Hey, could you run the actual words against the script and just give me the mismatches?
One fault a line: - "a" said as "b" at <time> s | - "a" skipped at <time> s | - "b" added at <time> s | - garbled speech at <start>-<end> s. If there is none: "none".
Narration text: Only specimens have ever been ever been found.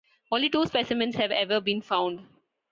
- "two" added at 0.5 s
- "ever been" skipped at 1.8 s